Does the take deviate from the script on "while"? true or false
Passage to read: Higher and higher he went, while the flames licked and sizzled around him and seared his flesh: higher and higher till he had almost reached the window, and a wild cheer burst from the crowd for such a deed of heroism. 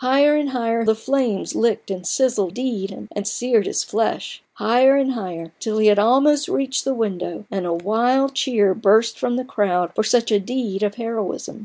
true